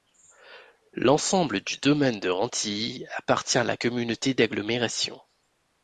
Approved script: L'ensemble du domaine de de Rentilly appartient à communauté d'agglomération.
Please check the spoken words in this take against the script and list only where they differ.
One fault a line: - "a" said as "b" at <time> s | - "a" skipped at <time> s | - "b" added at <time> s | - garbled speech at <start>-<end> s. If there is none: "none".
- "de" skipped at 2.3 s
- "la" added at 3.6 s